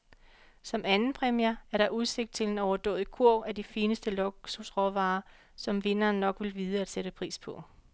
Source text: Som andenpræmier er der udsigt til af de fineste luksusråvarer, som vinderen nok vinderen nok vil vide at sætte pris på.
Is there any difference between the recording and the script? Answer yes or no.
yes